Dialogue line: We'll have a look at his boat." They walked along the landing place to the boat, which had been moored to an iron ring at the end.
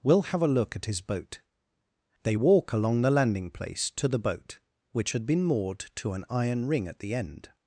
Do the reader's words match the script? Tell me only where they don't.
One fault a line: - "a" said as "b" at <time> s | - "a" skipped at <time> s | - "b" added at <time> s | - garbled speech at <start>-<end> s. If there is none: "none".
- "walked" said as "walk" at 2.3 s